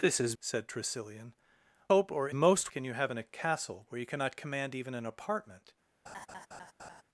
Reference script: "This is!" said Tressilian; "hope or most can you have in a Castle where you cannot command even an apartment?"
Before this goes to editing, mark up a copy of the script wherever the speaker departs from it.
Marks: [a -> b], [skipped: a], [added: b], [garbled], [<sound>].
"This is!" said Tressilian; "hope or most can you have in a Castle where you cannot command even an apartment?" [laugh]